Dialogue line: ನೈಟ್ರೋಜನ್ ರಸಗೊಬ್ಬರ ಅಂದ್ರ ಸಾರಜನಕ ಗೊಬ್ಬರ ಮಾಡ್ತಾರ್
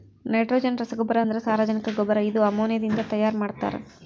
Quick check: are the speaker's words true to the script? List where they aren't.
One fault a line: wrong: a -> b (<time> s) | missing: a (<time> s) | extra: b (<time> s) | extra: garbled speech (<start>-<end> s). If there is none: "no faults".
extra: ಇದು ಅಮೋನಿಯಾದಿಂದ ತೈಯಾರ (2.3 s)